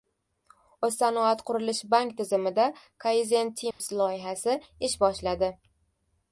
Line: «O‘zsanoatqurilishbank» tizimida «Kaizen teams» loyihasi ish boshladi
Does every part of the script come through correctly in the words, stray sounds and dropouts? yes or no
no